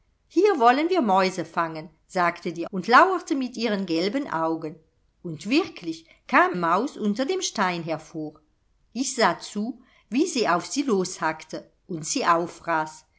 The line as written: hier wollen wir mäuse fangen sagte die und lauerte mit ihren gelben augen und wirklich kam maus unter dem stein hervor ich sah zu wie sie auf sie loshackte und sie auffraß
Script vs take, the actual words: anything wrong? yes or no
no